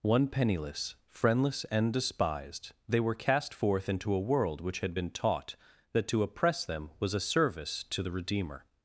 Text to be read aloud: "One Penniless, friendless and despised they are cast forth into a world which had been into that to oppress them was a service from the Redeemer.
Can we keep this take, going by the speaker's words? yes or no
no